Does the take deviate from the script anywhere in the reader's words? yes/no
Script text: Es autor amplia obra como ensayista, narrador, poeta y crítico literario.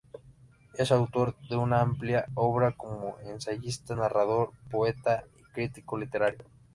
yes